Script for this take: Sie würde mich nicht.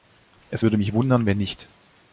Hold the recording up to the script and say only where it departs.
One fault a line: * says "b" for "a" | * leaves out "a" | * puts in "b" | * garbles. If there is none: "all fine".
* says "Es" for "Sie"
* puts in "wundern wenn"